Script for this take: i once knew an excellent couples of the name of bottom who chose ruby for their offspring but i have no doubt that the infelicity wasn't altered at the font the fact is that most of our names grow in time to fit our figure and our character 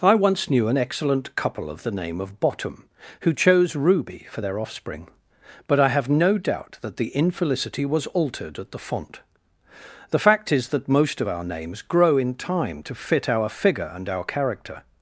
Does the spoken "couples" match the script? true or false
false